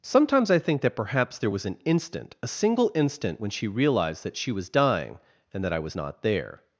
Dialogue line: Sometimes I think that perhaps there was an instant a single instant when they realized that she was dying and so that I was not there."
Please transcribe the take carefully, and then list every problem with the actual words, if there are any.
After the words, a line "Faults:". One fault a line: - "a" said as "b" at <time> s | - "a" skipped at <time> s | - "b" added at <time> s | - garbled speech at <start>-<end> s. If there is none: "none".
Sometimes I think that perhaps there was an instant a single instant when she realized that she was dying and that I was not there."
Faults:
- "they" said as "she" at 3.5 s
- "so" skipped at 5.6 s